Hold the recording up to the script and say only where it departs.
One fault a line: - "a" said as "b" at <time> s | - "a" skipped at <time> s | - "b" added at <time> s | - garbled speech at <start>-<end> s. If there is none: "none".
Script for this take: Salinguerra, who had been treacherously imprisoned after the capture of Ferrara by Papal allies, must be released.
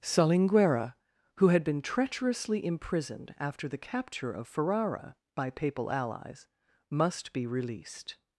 none